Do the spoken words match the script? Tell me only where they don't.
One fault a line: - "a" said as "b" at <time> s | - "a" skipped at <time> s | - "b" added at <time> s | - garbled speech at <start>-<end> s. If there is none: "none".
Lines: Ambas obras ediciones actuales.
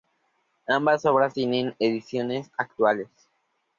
- "tienen" added at 1.3 s